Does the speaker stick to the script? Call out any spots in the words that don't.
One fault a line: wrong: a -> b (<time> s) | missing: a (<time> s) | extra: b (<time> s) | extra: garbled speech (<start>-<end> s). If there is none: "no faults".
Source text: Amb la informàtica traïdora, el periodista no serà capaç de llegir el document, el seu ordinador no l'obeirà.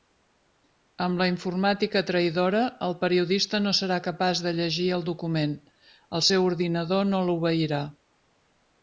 no faults